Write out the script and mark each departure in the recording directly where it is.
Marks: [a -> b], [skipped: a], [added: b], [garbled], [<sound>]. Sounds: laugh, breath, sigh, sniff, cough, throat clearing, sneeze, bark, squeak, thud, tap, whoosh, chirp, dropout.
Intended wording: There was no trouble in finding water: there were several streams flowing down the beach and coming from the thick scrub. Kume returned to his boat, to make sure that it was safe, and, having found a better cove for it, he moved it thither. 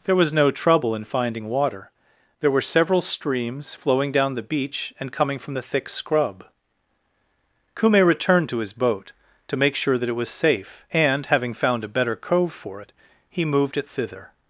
There was no trouble in finding water: there were several streams flowing down the beach and coming from the thick scrub. Kume returned to his boat, to make sure that it was safe, and, having found a better cove for it, he moved it thither.